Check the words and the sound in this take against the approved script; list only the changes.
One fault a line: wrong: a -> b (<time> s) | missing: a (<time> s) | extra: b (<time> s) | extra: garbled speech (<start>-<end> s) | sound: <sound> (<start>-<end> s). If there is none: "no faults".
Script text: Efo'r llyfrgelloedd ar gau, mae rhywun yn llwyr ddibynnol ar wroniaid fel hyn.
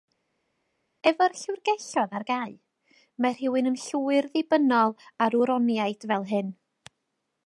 no faults